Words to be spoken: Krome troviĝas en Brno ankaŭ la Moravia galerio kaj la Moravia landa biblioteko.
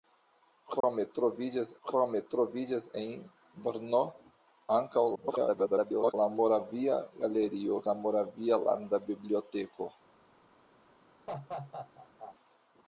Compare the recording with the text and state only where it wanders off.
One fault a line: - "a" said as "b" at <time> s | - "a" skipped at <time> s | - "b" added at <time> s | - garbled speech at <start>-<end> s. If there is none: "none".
- "krome troviĝas" added at 1.9 s
- garbled speech at 5.2-6.1 s
- "kaj" skipped at 7.8 s